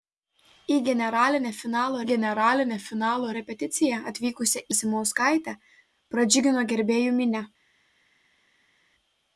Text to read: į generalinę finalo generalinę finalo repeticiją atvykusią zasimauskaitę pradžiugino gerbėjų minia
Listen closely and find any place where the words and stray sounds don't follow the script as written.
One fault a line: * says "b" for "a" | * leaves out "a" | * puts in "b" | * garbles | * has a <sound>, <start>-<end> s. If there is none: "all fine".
all fine